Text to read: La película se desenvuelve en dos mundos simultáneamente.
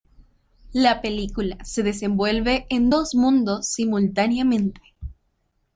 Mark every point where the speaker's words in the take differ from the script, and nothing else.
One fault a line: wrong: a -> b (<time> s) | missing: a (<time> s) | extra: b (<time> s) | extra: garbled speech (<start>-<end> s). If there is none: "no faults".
no faults